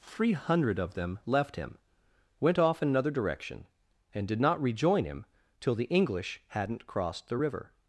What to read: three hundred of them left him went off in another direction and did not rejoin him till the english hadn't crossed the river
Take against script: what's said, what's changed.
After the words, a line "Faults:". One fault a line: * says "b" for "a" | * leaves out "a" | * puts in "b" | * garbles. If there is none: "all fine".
three hundred of them left him went off in another direction and did not rejoin him till the english hadn't crossed the river
Faults:
all fine